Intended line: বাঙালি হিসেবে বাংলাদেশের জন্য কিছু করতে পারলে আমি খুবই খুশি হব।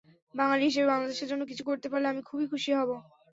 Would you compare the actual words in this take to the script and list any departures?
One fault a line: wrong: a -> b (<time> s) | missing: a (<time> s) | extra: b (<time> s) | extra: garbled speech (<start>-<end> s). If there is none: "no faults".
no faults